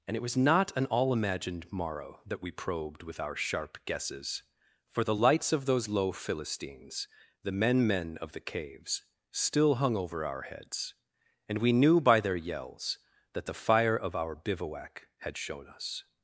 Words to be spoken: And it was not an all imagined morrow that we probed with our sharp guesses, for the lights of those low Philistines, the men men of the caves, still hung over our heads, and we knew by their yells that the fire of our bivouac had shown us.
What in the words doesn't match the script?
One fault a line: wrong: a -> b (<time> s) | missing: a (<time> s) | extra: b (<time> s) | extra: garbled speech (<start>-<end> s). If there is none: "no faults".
no faults